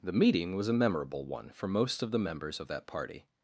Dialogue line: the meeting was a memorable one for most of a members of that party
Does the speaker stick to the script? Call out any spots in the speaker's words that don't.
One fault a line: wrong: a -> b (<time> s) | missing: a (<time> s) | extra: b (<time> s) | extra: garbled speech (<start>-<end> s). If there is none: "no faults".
wrong: a -> the (2.1 s)